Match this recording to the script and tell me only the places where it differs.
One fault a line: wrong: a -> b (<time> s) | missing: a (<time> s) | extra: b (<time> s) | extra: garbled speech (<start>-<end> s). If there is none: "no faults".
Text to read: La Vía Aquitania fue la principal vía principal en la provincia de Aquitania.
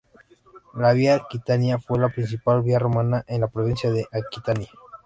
wrong: principal -> romana (2.8 s)